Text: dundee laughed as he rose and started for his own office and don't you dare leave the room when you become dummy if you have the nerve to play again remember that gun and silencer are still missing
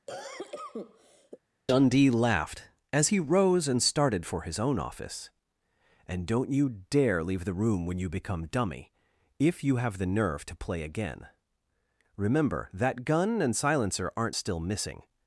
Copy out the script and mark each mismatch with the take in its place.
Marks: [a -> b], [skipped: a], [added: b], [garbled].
dundee laughed as he rose and started for his own office and don't you dare leave the room when you become dummy if you have the nerve to play again remember that gun and silencer [are -> aren't] still missing